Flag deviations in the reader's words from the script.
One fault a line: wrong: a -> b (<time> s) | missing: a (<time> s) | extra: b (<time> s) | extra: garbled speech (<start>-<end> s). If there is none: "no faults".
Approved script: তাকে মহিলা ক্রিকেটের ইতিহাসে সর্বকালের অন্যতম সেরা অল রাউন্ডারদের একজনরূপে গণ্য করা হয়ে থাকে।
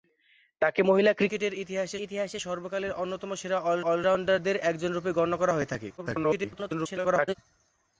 extra: ইতিহাসে (2.1 s)
extra: অল (3.8 s)
extra: garbled speech (6.0-7.4 s)